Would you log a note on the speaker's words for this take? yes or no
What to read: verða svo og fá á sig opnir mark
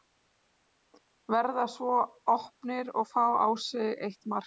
yes